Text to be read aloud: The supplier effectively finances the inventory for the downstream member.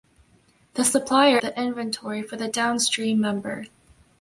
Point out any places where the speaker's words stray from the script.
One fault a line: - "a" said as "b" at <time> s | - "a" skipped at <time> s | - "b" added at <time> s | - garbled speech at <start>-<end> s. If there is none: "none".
- "effectively finances" skipped at 1.4 s